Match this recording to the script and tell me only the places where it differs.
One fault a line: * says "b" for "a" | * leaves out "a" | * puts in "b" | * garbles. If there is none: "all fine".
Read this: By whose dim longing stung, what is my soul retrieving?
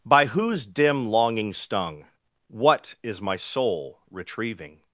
all fine